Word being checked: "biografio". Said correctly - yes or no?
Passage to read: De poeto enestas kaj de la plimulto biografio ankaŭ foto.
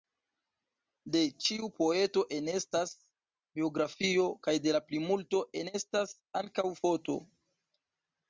no